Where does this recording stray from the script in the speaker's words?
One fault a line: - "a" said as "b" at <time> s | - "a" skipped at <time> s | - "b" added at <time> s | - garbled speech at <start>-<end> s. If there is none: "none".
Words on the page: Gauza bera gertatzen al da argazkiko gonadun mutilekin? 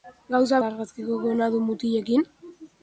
- "bera gertatzen al" skipped at 0.6 s